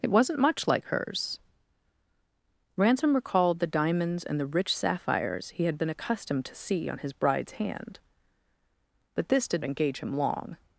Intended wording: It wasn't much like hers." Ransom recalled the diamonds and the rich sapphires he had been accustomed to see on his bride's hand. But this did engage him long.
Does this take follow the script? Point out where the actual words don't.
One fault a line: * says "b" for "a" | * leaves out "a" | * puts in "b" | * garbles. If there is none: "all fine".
all fine